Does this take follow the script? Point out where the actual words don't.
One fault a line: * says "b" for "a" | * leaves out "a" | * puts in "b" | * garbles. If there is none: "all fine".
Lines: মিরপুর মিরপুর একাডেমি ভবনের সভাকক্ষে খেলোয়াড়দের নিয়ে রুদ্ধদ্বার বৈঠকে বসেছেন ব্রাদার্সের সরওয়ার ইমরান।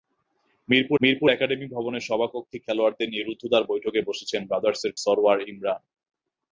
all fine